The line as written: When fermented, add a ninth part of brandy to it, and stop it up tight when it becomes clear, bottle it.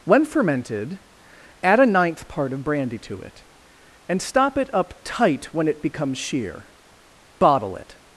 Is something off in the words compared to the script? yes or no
yes